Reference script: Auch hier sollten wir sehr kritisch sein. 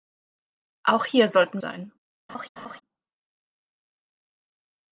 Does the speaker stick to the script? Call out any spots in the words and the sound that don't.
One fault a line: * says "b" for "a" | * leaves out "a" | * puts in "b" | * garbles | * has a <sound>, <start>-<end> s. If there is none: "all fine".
* leaves out "wir sehr kritisch"
* has a laugh, 2.3-2.8 s